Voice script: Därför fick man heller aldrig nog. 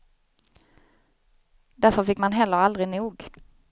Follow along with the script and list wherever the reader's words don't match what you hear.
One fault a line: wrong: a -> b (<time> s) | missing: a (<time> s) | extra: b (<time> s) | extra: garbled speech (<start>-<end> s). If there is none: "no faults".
no faults